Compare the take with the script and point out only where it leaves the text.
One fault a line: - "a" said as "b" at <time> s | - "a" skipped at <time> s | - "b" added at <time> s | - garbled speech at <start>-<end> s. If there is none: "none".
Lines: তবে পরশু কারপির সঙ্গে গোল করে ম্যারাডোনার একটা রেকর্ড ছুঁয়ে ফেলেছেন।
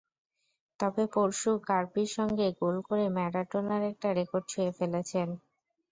none